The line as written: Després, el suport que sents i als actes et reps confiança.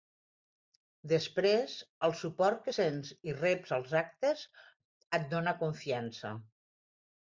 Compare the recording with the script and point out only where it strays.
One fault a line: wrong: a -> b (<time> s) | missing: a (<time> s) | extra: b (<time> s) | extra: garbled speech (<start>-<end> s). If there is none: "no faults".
extra: reps (3.4 s)
wrong: reps -> dóna (5.4 s)